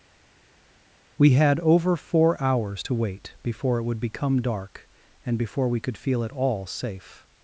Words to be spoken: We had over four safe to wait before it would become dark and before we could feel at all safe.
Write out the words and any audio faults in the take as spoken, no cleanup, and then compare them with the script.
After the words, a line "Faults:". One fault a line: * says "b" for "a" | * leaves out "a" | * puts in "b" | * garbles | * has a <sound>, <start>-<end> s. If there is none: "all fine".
We had over four hours to wait before it would become dark and before we could feel at all safe.
Faults:
* says "hours" for "safe"